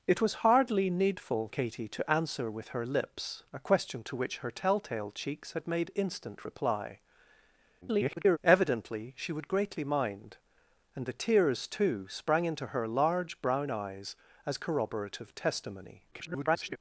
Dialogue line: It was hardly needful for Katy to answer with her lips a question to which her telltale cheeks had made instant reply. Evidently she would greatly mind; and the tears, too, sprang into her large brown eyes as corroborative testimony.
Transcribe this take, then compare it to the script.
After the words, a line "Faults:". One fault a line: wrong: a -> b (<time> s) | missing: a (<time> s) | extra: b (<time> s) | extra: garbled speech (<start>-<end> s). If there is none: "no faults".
It was hardly needful Katy to answer with her lips a question to which her telltale cheeks had made instant reply. [garbled] Evidently she would greatly mind; and the tears, too, sprang into her large brown eyes as corroborative testimony. [garbled]
Faults:
missing: for (1.5 s)
extra: garbled speech (7.8-8.4 s)
extra: garbled speech (16.1-16.8 s)